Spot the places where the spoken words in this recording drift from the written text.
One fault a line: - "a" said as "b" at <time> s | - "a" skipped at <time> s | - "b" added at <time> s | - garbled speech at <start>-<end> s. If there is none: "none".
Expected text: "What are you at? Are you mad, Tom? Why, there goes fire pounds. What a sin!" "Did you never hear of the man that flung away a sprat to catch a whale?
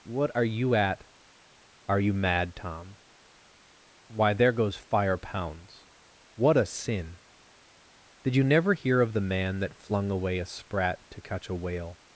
none